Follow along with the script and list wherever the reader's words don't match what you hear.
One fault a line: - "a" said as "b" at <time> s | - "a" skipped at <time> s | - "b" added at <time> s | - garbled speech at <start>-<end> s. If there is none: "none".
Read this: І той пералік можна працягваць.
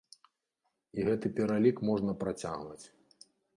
- "той" said as "гэты" at 1.1 s